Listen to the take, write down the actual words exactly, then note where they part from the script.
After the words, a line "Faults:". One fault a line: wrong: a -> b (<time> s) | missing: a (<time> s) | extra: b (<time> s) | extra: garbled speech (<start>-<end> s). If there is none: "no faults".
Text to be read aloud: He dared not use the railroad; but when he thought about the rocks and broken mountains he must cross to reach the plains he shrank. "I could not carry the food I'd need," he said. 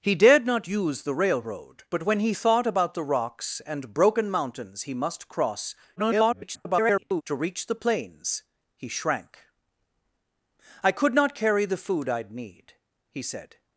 He dared not use the railroad; but when he thought about the rocks and broken mountains he must cross [garbled] to reach the plains he shrank. "I could not carry the food I'd need," he said.
Faults:
extra: garbled speech (6.0-7.2 s)